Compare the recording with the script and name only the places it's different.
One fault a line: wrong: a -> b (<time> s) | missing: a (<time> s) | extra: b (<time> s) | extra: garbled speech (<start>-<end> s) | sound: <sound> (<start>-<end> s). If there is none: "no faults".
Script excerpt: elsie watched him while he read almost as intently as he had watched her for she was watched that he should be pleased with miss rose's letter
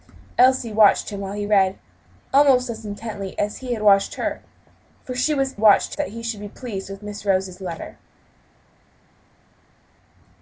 no faults